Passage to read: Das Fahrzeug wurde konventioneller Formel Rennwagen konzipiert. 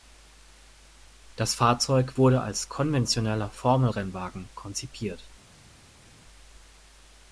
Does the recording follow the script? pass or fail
fail